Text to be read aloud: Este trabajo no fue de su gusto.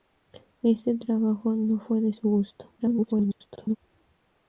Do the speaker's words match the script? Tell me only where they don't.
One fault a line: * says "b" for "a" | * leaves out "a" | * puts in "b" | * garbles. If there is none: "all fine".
* garbles